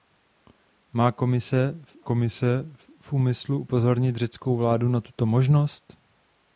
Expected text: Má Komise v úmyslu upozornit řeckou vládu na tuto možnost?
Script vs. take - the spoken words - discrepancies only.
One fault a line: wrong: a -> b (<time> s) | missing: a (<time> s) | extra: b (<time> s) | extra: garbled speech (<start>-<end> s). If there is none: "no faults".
extra: Komise (2.0 s)